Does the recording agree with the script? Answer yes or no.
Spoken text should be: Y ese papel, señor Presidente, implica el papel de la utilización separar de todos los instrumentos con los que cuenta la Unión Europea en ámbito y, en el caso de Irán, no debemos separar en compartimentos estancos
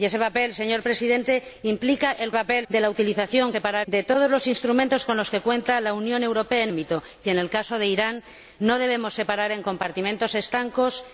yes